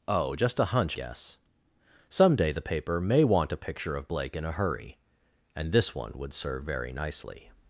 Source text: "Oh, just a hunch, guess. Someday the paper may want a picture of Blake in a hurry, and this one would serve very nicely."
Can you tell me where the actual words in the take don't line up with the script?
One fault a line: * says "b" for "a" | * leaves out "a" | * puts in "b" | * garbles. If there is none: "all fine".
all fine